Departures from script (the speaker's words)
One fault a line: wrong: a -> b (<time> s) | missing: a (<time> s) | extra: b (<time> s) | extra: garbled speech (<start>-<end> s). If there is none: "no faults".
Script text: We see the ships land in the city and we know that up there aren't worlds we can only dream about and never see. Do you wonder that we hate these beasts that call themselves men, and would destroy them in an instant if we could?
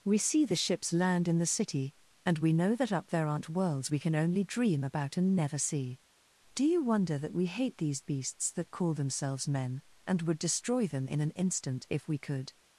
no faults